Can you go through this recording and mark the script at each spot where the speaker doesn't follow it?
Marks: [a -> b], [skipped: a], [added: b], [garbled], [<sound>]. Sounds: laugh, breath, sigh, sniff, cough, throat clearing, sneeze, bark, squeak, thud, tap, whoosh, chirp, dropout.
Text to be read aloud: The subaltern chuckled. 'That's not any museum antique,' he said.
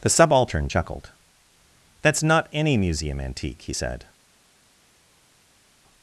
The subaltern chuckled. 'That's not any museum antique,' he said.